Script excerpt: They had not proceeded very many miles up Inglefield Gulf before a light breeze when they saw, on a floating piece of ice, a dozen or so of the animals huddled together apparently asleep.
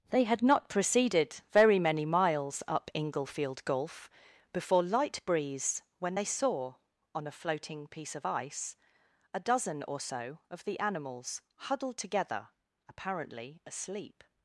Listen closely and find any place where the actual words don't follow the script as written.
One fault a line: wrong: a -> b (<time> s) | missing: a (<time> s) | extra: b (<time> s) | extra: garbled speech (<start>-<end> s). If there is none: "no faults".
missing: a (4.8 s)